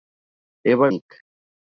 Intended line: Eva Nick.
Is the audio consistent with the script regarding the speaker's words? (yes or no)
yes